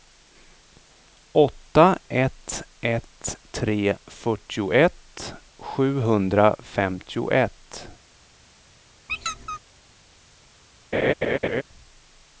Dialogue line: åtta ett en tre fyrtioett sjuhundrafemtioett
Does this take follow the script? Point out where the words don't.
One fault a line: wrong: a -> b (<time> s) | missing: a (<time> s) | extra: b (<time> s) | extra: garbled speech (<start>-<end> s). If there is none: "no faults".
wrong: en -> ett (2.8 s)